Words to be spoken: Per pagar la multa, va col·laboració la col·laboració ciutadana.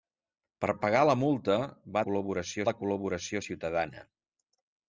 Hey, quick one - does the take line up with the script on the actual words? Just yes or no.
yes